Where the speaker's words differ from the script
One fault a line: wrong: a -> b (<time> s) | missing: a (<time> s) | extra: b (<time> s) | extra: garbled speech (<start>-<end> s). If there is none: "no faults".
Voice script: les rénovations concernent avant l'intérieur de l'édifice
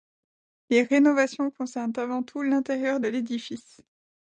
extra: tout (2.2 s)